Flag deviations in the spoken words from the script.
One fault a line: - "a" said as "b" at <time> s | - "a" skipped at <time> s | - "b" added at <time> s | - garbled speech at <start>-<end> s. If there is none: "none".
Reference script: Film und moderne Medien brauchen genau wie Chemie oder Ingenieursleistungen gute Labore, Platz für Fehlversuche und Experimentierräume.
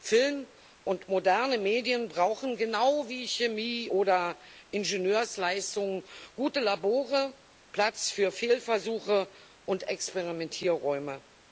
none